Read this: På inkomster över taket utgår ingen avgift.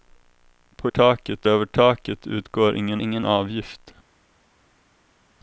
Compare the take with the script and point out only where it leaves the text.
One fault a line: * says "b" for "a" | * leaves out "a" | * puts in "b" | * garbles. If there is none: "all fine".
* says "taket" for "inkomster"
* puts in "ingen"